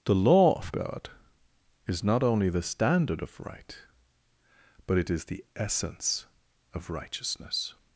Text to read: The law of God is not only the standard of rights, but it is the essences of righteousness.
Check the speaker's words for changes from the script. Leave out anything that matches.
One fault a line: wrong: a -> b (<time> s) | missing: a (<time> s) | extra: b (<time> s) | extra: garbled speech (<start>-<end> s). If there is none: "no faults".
wrong: rights -> right (3.4 s)
wrong: essences -> essence (5.5 s)